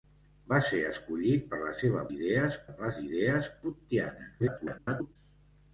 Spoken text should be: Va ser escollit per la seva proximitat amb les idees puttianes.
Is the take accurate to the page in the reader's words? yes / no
no